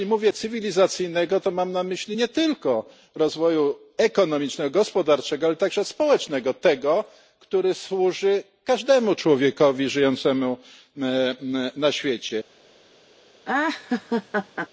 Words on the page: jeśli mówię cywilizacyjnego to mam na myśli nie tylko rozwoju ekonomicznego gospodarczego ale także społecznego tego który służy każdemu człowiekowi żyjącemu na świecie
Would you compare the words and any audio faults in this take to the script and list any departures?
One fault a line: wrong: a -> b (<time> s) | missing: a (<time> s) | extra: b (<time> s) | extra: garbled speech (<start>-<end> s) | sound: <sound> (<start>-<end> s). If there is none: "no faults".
sound: laugh (13.4-14.7 s)